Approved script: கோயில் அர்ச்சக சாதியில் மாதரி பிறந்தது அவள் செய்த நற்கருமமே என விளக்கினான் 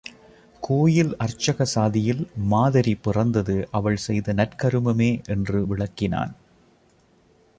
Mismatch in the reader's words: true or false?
true